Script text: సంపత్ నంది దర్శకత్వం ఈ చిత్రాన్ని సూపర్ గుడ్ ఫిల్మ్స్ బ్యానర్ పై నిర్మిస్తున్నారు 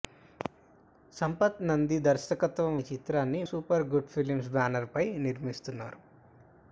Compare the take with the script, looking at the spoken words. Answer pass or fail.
pass